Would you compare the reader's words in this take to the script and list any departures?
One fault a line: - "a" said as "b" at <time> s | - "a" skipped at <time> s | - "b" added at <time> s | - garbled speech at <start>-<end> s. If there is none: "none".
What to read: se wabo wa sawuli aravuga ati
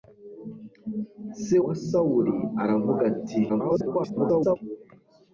- "wabo" skipped at 1.6 s
- garbled speech at 3.5-4.6 s